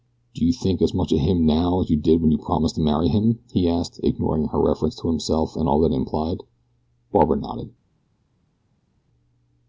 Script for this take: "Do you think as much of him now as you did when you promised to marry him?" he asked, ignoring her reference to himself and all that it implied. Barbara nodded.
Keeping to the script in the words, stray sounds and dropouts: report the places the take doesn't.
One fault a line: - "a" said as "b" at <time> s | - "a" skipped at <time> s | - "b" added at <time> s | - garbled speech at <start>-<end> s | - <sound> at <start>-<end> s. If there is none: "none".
none